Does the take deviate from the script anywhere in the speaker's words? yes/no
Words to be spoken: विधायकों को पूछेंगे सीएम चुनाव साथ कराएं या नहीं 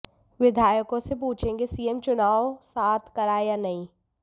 yes